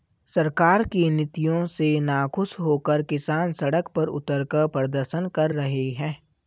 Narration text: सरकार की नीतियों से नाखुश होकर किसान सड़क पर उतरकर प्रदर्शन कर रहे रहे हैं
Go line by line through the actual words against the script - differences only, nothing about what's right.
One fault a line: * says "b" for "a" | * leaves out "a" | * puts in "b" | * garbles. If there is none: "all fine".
* leaves out "रहे"